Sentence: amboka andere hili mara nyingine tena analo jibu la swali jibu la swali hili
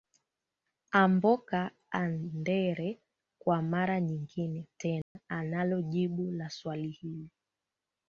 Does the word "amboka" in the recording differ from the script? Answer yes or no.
no